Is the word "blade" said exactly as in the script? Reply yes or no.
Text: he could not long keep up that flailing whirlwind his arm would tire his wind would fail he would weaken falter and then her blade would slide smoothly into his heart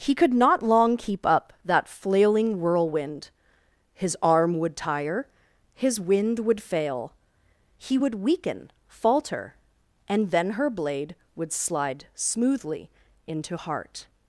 yes